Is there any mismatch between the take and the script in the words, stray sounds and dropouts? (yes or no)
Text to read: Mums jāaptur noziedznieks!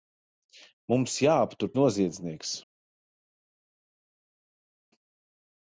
no